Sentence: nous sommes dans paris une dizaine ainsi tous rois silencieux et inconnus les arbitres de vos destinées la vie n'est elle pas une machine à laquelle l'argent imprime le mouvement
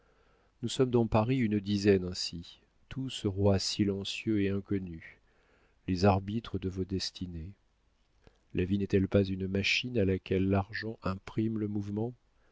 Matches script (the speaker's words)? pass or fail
pass